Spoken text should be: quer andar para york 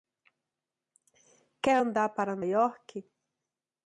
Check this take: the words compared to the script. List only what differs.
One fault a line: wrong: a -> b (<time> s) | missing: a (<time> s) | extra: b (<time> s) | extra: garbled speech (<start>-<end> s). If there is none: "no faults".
no faults